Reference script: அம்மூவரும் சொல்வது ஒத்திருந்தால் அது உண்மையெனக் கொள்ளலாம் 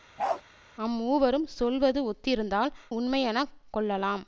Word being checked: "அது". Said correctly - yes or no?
no